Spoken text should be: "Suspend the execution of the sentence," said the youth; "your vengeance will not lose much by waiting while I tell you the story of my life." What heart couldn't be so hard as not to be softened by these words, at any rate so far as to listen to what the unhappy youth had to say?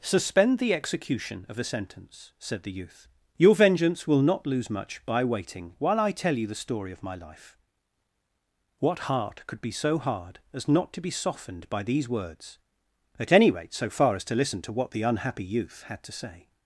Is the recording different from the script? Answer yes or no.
yes